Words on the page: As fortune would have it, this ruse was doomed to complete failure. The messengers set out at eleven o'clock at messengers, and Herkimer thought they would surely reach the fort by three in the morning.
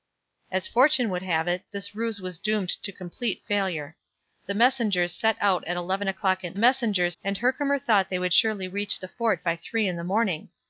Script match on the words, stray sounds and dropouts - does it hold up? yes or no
yes